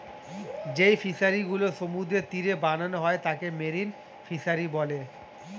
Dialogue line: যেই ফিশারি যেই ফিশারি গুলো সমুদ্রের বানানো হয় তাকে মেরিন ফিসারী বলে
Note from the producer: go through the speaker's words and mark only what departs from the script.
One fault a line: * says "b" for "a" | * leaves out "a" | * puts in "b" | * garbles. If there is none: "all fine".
* leaves out "যেই ফিশারি"
* puts in "তীরে"